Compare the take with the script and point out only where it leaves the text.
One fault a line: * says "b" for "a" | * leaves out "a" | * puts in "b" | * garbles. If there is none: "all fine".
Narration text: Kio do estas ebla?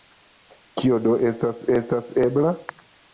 * puts in "estas"